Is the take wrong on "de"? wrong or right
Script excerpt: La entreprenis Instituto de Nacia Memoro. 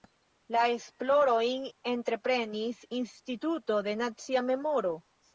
right